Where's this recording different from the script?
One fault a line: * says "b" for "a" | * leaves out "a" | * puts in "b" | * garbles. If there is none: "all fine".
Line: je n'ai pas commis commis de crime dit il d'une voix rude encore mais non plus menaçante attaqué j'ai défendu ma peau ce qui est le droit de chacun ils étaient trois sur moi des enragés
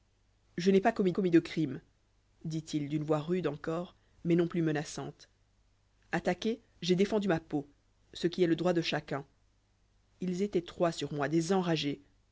all fine